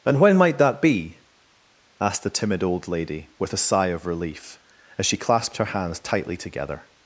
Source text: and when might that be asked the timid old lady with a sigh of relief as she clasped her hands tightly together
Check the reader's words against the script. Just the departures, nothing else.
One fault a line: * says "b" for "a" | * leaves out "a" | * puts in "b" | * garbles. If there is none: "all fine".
all fine